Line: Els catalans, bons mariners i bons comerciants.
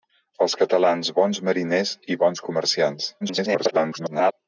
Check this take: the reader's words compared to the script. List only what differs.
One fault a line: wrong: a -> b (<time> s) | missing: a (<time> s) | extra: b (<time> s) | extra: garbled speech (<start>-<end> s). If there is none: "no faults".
extra: garbled speech (3.2-4.3 s)